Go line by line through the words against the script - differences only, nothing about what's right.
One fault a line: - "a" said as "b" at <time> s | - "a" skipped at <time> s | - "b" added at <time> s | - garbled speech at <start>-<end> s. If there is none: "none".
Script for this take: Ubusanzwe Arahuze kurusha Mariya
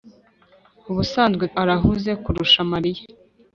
none